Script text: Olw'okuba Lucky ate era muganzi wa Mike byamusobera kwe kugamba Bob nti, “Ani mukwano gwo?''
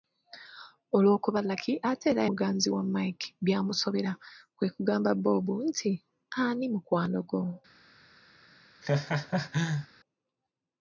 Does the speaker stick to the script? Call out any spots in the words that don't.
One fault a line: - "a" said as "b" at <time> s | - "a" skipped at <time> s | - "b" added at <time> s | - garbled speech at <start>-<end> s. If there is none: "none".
none